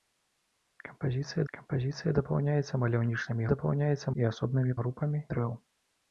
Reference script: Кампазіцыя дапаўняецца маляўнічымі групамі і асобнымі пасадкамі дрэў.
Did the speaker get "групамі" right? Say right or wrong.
wrong